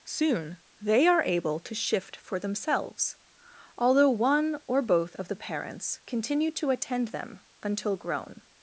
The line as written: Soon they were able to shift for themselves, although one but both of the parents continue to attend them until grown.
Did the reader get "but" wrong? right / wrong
wrong